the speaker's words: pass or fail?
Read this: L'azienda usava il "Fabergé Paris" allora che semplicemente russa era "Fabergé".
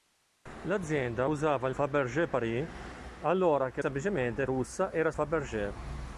pass